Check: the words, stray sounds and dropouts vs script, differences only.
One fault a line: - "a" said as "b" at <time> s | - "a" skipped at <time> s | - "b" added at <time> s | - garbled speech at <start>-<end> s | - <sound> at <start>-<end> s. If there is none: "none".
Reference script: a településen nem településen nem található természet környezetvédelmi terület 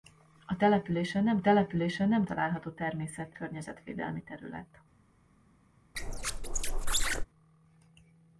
- squeak at 5.9-7.2 s